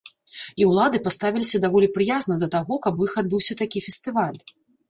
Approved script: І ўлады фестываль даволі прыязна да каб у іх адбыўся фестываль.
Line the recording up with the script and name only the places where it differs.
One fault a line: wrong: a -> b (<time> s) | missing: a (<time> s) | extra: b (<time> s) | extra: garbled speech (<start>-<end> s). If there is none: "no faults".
wrong: фестываль -> паставіліся (1.1 s)
extra: таго (2.6 s)
extra: такі (3.7 s)